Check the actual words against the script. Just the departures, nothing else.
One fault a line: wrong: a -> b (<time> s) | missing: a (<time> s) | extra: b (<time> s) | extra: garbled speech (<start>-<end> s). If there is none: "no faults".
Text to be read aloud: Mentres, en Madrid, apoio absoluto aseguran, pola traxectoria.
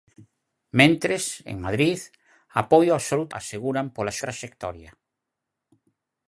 no faults